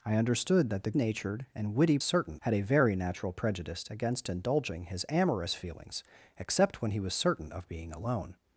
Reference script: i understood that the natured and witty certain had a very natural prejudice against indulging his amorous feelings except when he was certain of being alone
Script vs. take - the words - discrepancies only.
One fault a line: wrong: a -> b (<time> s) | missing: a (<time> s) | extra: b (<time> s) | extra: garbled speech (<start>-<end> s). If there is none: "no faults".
no faults